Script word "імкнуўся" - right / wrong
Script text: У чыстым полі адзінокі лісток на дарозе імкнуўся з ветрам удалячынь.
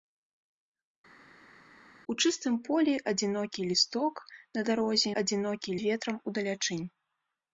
wrong